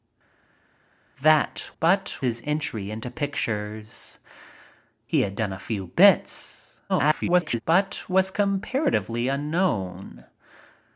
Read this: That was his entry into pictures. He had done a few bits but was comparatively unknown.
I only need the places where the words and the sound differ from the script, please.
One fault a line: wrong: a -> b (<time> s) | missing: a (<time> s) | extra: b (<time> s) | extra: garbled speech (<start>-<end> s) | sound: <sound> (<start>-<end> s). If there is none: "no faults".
wrong: was -> but (1.8 s)
extra: garbled speech (6.9-7.6 s)